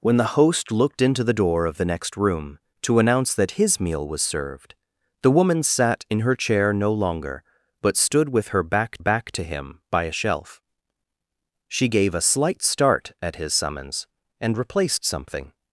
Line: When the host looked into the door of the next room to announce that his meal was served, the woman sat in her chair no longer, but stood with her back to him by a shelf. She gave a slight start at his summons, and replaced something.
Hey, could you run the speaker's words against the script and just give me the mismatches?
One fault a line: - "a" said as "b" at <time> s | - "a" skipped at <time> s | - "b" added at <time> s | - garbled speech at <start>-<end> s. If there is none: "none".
- "back" added at 9.0 s